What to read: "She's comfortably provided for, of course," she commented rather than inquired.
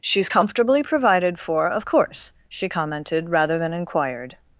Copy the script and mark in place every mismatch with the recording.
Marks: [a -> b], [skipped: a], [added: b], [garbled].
"She's comfortably provided for, of course," she commented rather than inquired.